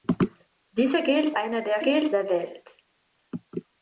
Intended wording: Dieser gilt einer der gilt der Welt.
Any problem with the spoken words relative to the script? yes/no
no